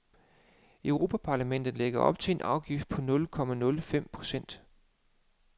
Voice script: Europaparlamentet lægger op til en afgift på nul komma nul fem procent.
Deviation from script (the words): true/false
false